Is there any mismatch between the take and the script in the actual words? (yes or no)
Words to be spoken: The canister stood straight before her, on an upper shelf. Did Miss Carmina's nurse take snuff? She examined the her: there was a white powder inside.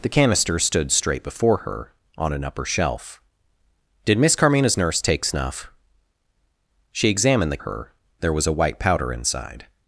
no